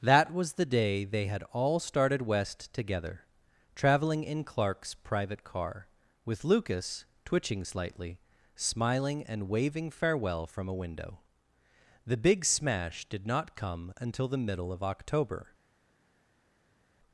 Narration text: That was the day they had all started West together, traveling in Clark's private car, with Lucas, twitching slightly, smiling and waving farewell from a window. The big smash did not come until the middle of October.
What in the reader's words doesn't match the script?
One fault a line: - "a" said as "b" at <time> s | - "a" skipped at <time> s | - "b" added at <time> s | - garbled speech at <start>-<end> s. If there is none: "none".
none